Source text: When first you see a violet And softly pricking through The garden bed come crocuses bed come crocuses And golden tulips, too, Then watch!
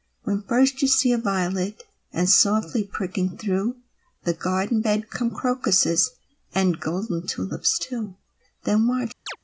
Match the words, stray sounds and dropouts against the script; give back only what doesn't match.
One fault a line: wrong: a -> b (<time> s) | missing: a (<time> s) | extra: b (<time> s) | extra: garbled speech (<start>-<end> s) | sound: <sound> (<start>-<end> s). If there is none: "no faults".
missing: bed come crocuses (6.1 s)
sound: chirp (9.3-9.4 s)